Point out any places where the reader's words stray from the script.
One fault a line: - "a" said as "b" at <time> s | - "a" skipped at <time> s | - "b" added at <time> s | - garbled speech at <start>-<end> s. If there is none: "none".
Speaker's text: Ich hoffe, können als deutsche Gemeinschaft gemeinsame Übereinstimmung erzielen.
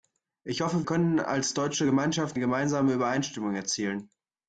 none